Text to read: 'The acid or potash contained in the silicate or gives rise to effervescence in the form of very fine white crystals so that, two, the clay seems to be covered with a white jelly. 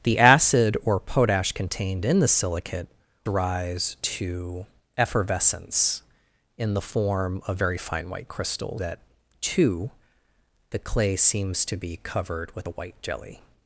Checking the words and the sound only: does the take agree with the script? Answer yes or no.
no